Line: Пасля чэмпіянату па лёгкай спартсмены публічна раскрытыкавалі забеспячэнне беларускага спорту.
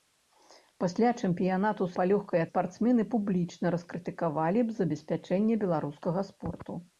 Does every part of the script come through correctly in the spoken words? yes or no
yes